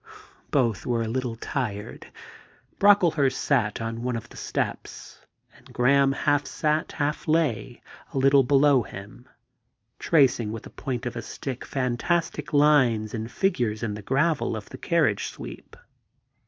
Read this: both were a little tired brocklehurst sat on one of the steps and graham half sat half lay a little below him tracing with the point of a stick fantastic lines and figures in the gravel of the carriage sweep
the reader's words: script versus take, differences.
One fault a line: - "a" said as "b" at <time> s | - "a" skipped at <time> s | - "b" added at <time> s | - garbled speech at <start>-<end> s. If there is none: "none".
none